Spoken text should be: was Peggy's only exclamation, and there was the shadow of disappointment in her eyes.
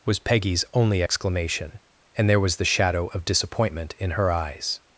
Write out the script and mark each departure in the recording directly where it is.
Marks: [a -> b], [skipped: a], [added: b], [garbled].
was Peggy's only exclamation, and there was the shadow of disappointment in her eyes.